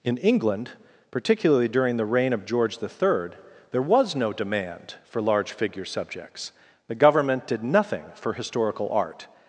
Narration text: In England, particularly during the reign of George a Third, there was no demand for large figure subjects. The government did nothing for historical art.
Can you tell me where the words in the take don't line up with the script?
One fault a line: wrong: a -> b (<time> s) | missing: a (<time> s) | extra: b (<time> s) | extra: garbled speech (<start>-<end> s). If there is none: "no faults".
wrong: a -> the (2.8 s)